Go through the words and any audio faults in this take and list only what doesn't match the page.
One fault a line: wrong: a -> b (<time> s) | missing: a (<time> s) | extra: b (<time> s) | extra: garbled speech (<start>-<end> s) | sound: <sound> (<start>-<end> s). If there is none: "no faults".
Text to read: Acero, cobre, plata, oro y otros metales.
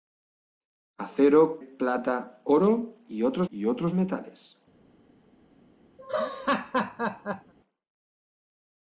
missing: cobre (1.6 s)
extra: y otros (3.5 s)
sound: laugh (6.0-7.5 s)